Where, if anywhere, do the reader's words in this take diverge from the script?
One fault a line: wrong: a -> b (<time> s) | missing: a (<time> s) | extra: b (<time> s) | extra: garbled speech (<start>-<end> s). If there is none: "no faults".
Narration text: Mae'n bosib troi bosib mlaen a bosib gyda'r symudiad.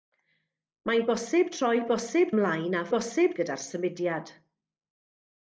no faults